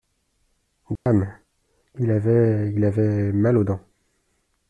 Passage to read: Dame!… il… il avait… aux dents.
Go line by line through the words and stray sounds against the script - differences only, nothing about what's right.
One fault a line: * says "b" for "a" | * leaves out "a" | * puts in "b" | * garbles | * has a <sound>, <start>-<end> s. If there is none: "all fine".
* has a dropout, 1.0-1.1 s
* puts in "avait"
* puts in "mal"